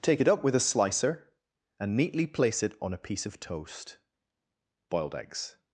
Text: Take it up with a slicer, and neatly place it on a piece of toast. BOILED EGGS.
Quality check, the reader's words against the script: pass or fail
pass